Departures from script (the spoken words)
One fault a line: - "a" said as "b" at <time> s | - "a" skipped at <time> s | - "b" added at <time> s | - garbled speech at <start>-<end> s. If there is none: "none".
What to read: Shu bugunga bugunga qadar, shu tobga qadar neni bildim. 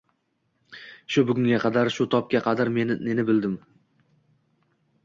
- "bugunga" skipped at 1.6 s